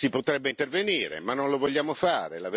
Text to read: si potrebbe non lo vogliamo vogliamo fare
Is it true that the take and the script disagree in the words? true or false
true